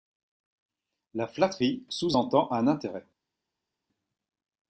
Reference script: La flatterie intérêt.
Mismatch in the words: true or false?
true